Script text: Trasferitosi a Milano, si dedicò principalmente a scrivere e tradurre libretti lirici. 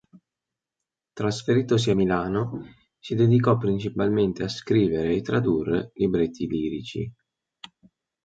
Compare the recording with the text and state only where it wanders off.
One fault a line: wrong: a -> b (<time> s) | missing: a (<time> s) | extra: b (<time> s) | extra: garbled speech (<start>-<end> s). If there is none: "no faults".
no faults